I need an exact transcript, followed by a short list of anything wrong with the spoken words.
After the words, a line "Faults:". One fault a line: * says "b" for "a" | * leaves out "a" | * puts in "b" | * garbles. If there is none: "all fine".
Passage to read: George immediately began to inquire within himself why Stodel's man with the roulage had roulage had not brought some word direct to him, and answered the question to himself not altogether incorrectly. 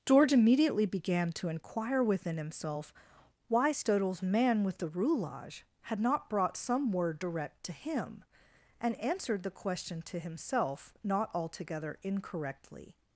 George immediately began to inquire within himself why Stodel's man with the roulage had not brought some word direct to him, and answered the question to himself not altogether incorrectly.
Faults:
* leaves out "roulage had"